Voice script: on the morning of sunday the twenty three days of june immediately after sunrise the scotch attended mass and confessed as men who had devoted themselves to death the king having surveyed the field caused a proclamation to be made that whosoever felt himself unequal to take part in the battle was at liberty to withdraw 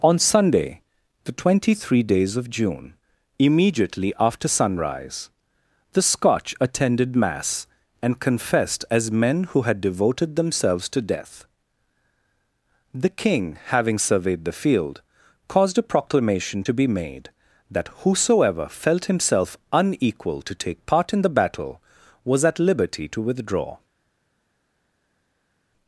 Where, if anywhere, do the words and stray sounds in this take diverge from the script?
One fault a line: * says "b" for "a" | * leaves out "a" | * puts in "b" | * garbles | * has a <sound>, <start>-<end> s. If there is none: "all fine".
* leaves out "the morning of"